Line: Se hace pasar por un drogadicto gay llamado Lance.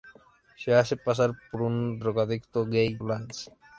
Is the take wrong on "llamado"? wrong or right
wrong